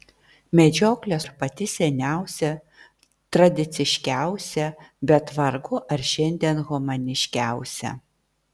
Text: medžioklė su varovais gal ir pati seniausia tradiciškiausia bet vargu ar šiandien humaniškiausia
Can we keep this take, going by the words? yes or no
no